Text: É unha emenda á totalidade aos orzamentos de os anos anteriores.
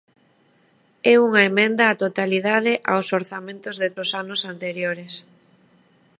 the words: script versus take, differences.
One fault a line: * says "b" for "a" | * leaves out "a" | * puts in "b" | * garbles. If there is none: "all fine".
all fine